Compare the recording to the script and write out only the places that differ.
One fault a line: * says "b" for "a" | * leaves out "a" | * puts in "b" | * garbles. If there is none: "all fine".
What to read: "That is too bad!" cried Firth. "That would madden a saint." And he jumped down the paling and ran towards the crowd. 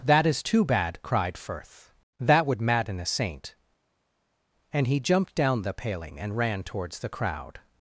all fine